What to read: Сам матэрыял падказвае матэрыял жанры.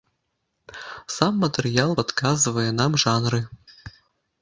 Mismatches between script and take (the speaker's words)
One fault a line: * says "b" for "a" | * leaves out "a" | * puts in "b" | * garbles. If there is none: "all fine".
* says "нам" for "матэрыял"